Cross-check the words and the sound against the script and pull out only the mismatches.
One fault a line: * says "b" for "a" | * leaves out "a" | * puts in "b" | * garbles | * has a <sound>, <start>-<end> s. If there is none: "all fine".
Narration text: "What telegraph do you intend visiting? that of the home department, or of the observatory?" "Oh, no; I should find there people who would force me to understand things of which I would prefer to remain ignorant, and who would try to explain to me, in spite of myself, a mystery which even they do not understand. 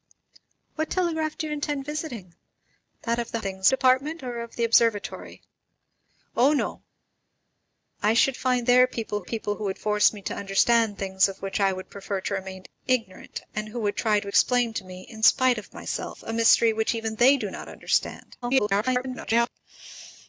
* says "things" for "home"
* puts in "people"
* garbles